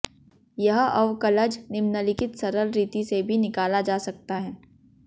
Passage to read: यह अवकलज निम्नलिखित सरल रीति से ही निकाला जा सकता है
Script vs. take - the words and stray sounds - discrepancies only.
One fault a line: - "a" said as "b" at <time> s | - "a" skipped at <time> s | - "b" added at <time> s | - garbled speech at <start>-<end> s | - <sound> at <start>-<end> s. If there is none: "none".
- "ही" said as "भी" at 3.2 s